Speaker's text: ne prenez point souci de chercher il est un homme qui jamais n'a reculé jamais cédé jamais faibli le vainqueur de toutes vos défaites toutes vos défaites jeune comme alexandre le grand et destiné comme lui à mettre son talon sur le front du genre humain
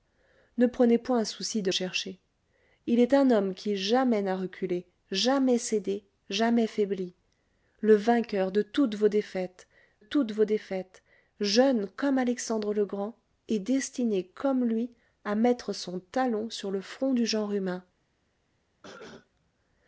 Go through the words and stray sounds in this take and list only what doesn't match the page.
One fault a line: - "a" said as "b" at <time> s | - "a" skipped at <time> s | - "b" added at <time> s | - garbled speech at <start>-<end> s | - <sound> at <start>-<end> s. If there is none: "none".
- cough at 18.8-19.3 s